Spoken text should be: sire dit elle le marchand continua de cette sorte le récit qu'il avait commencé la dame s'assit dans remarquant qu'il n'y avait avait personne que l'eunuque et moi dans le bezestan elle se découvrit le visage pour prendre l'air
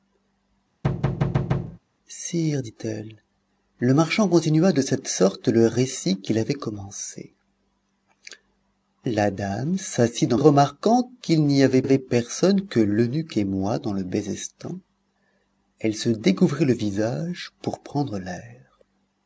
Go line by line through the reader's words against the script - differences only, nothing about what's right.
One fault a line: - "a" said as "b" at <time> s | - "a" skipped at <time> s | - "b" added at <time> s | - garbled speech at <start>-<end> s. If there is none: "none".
none